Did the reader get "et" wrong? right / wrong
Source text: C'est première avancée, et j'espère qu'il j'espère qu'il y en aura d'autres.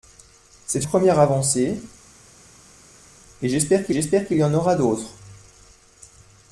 right